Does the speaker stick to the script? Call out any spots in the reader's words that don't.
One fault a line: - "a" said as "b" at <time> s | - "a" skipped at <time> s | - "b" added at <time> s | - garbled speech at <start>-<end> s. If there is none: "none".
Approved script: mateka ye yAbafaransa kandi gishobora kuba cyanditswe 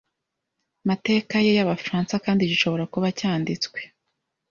none